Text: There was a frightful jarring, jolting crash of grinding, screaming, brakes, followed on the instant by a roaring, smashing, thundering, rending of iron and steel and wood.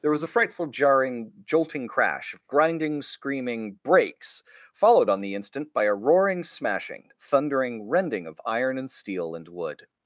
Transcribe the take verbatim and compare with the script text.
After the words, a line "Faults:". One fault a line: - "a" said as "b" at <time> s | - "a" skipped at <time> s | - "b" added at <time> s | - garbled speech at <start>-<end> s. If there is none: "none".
There was a frightful jarring, jolting crash of grinding, screaming, brakes, followed on the instant by a roaring, smashing, thundering, rending of iron and steel and wood.
Faults:
none